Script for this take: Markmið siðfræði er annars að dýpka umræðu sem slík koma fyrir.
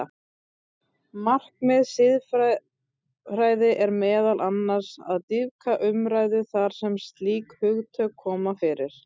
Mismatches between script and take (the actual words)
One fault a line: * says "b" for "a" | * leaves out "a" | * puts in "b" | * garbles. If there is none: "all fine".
* puts in "meðal"
* puts in "þar"
* puts in "hugtök"